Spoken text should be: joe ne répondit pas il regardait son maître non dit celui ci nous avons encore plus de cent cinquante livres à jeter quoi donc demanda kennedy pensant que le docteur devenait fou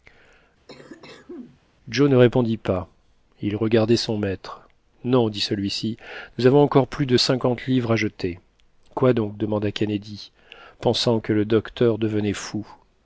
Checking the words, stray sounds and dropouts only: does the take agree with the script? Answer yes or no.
no